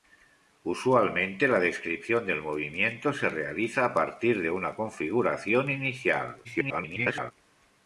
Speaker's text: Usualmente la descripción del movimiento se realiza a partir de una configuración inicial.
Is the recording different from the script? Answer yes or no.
yes